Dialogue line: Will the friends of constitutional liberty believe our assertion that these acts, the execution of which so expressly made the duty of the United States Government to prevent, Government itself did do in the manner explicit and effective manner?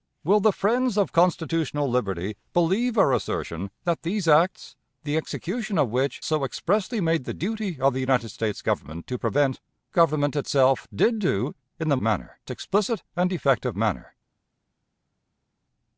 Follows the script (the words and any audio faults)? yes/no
yes